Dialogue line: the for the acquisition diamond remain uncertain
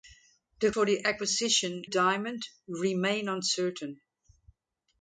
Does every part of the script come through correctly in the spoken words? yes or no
yes